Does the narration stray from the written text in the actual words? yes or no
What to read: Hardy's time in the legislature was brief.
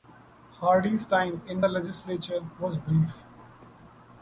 no